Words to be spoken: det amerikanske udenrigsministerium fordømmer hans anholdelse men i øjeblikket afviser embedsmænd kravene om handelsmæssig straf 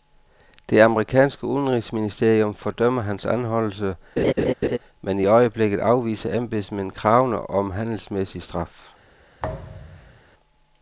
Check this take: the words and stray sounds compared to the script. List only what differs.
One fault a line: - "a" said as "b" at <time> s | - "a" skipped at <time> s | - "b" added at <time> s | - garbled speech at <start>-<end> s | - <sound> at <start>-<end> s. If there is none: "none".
- laugh at 4.2-4.8 s
- thud at 9.4-10.2 s